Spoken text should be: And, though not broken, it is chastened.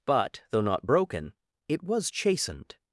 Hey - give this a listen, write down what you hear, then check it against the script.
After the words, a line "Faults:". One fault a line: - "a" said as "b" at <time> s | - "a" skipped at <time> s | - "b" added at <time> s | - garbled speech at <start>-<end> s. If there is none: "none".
But, though not broken, it was chastened.
Faults:
- "And" said as "But" at 0.1 s
- "is" said as "was" at 1.8 s